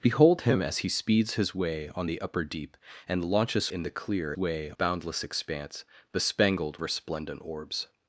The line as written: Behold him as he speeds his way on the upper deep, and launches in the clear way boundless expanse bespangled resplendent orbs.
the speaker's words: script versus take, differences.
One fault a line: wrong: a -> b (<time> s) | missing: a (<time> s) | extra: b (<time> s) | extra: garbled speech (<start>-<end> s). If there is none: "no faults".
no faults